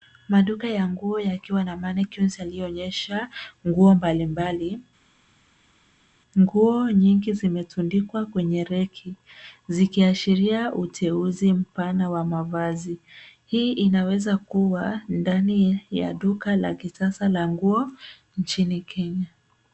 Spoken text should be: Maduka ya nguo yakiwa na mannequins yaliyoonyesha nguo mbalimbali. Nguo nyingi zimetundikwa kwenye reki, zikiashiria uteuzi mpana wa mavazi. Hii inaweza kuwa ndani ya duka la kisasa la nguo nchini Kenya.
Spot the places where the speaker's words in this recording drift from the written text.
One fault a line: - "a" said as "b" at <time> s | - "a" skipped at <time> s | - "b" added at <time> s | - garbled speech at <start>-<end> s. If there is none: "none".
none